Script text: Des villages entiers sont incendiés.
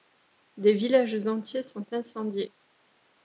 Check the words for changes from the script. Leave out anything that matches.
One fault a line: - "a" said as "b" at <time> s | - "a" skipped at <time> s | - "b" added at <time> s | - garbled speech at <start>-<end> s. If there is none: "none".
none